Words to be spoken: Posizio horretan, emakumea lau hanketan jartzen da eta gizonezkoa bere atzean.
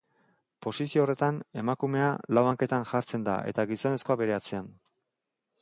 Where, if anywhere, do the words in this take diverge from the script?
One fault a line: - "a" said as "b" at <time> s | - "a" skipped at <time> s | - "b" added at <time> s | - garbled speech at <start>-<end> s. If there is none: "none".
none